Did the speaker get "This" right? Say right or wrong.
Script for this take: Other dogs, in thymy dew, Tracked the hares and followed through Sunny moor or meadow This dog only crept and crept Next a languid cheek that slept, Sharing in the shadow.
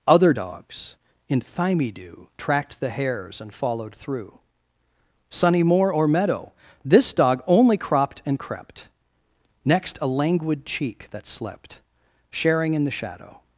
right